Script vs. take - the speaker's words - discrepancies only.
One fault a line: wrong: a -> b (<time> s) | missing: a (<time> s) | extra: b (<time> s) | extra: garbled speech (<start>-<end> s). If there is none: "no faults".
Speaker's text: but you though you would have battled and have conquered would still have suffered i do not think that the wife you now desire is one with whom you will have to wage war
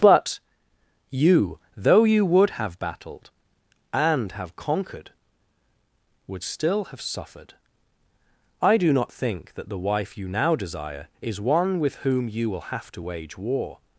no faults